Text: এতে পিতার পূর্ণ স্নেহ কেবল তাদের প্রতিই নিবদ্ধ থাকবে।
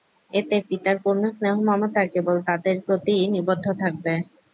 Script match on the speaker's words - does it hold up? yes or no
no